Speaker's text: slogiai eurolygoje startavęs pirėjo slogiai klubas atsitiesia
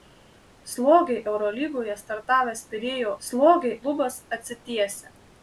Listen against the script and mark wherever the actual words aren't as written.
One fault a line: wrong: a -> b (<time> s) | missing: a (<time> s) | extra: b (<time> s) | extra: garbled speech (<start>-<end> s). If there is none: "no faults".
no faults